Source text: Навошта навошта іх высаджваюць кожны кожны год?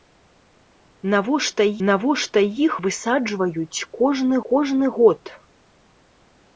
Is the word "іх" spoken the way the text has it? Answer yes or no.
yes